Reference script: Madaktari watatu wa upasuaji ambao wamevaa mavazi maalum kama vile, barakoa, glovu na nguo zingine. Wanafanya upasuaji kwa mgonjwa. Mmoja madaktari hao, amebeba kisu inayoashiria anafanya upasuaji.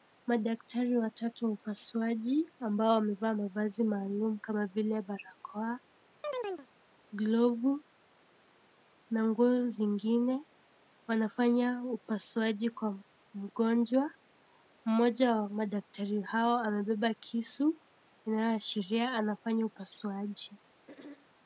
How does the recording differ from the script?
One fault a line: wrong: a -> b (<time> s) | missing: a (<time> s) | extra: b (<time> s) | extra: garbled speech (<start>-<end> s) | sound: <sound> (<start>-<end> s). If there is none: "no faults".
sound: chirp (6.2-6.7 s)
extra: wa (15.4 s)
sound: throat clearing (20.9-21.3 s)